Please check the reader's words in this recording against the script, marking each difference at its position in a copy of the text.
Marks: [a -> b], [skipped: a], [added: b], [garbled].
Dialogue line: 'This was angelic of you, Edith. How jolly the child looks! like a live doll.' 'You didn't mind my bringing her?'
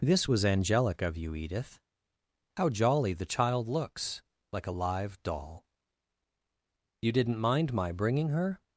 'This was angelic of you, Edith. How jolly the child looks! like a live doll.' 'You didn't mind my bringing her?'